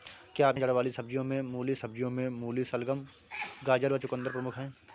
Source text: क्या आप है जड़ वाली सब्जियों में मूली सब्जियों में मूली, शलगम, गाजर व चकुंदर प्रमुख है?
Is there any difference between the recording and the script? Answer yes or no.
no